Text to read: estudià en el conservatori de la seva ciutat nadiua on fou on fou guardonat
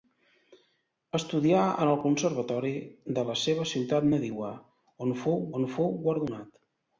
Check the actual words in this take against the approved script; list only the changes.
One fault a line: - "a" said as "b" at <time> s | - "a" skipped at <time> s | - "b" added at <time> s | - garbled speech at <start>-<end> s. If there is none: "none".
none